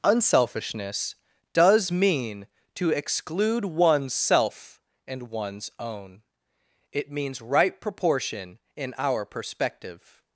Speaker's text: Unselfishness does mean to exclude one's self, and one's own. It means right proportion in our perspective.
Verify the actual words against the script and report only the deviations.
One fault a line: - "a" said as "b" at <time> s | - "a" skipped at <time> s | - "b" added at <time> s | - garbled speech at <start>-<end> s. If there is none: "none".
none